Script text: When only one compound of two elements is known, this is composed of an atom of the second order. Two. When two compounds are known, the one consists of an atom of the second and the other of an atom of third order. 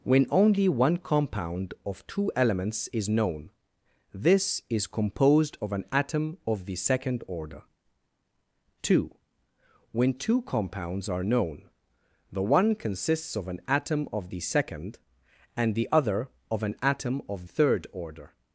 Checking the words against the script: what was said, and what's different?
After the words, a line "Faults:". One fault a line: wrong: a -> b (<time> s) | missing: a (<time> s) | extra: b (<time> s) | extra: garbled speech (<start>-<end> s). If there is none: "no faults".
When only one compound of two elements is known, this is composed of an atom of the second order. Two. When two compounds are known, the one consists of an atom of the second and the other of an atom of third order.
Faults:
no faults